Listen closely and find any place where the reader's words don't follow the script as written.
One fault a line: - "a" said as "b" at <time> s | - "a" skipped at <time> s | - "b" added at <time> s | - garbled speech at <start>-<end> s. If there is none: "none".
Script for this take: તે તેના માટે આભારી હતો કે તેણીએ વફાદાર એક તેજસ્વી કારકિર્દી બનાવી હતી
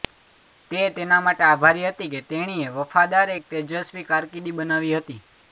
- "હતો" said as "હતી" at 1.9 s